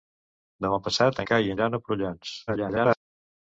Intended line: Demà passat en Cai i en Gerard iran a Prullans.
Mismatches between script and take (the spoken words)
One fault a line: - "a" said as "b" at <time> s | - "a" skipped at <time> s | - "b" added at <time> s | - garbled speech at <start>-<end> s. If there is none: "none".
- "en" skipped at 1.2 s
- "en Gerard" skipped at 1.6 s
- garbled speech at 2.5-3.0 s